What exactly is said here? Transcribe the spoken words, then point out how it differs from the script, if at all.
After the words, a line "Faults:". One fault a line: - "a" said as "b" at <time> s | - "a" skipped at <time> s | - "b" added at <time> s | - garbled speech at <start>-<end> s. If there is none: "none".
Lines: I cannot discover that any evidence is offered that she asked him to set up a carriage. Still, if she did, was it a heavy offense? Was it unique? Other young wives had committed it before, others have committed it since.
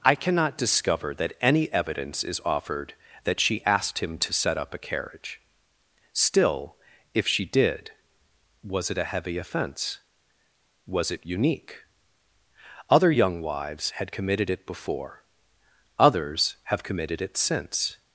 I cannot discover that any evidence is offered that she asked him to set up a carriage. Still, if she did, was it a heavy offense? Was it unique? Other young wives had committed it before, others have committed it since.
Faults:
none